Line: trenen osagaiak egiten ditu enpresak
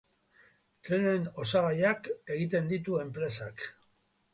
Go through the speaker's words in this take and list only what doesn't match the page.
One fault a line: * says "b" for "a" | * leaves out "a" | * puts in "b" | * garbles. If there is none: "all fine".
all fine